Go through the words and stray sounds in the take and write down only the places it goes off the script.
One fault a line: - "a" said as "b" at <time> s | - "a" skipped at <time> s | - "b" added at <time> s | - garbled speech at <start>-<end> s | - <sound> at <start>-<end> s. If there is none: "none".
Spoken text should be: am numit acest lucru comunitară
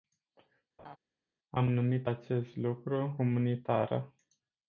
- laugh at 0.8-1.0 s